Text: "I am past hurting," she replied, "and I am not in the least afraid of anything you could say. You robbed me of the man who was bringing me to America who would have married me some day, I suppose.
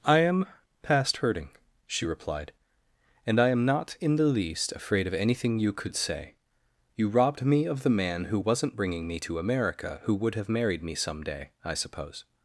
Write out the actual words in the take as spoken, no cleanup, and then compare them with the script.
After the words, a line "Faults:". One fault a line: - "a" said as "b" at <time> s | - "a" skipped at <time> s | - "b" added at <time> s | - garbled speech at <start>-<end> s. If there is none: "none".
"I am past hurting," she replied, "and I am not in the least afraid of anything you could say. You robbed me of the man who wasn't bringing me to America who would have married me some day, I suppose.
Faults:
- "was" said as "wasn't" at 8.4 s